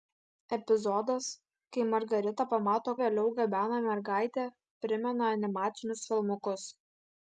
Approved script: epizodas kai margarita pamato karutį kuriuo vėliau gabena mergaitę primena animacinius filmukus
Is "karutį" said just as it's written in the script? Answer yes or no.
no